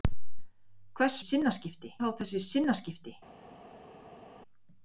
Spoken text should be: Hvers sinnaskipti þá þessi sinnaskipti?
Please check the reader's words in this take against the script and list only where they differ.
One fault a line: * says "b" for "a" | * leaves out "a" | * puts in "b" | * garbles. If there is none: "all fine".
all fine